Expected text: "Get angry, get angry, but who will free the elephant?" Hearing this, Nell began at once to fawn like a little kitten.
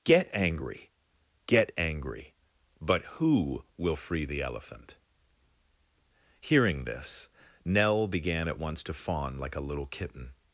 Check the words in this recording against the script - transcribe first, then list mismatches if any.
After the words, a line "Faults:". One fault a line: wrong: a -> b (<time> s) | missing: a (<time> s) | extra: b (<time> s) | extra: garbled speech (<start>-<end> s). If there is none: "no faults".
"Get angry, get angry, but who will free the elephant?" Hearing this, Nell began at once to fawn like a little kitten.
Faults:
no faults